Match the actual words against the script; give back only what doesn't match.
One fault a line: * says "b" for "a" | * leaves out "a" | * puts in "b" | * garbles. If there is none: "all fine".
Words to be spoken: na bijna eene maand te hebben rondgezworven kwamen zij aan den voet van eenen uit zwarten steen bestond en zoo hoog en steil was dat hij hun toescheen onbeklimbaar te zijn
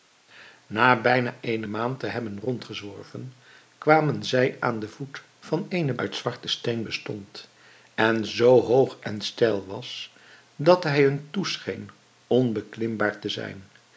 all fine